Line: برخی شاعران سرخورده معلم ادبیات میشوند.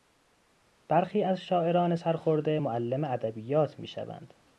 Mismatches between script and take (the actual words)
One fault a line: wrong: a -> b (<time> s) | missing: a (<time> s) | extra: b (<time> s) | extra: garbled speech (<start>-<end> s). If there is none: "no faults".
extra: از (1.2 s)